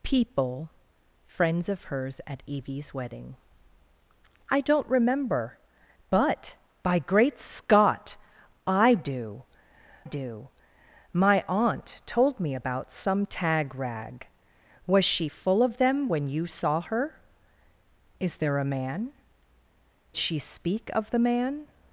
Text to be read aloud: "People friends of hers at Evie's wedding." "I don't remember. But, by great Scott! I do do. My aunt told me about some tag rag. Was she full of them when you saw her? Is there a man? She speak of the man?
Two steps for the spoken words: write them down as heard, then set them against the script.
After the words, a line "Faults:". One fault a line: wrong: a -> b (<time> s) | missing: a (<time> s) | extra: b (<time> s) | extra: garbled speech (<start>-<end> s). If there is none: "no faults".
"People friends of hers at Evie's wedding." "I don't remember. But, by great Scott! I do do. My aunt told me about some tag rag. Was she full of them when you saw her? Is there a man? She speak of the man?
Faults:
no faults